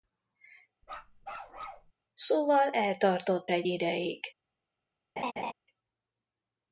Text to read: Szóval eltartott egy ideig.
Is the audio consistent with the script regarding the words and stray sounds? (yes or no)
no